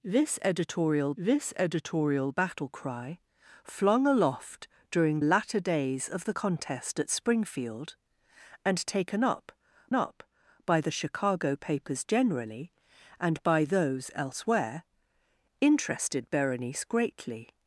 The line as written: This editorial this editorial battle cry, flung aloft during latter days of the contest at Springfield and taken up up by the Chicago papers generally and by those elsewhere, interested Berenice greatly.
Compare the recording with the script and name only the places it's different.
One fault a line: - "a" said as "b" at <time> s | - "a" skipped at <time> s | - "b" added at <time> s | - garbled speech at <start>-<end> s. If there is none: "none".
none